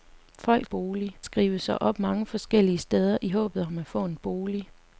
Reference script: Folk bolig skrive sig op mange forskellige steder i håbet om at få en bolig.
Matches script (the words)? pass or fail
pass